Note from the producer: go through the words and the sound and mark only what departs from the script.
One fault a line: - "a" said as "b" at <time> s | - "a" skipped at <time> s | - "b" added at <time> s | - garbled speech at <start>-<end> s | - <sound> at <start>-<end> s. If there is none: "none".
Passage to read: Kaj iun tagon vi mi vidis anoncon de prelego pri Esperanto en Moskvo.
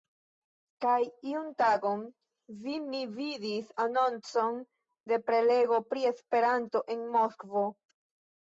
none